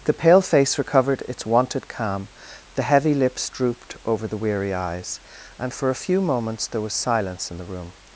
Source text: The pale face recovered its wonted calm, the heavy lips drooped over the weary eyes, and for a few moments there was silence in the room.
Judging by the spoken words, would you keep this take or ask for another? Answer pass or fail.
pass